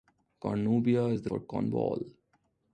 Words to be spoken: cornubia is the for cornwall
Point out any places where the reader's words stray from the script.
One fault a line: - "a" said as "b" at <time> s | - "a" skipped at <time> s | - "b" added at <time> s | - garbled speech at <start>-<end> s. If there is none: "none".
none